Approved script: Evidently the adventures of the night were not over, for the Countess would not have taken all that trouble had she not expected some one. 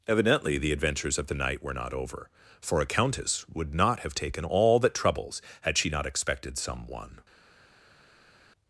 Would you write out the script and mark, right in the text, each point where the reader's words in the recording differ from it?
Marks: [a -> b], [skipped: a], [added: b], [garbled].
Evidently the adventures of the night were not over, for [the -> a] Countess would not have taken all that [trouble -> troubles] had she not expected some one.